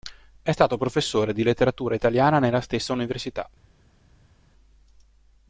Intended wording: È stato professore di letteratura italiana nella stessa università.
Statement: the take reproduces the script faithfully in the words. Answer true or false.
true